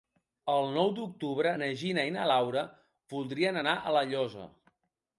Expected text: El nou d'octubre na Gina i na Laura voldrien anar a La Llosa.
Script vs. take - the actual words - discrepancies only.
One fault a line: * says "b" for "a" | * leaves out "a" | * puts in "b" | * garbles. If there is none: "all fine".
all fine